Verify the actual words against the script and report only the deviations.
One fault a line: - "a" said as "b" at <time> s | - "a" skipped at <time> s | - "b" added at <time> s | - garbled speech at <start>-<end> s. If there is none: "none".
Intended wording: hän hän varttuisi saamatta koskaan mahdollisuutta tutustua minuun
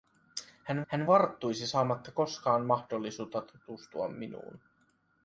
none